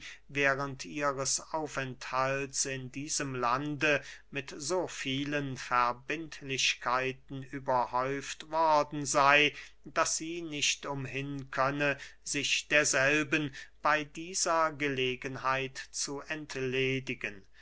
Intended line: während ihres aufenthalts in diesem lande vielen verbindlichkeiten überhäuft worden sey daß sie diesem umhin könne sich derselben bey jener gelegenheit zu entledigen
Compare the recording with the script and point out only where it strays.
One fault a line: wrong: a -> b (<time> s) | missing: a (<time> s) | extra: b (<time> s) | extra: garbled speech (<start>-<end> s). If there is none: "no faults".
extra: mit so (4.3 s)
wrong: diesem -> nicht (10.4 s)
wrong: jener -> dieser (14.1 s)